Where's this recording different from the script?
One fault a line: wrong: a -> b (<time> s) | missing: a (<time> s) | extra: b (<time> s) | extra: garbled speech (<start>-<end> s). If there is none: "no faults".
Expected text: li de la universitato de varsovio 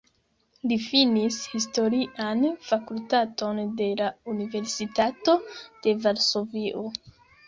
extra: finis historian fakultaton (0.8 s)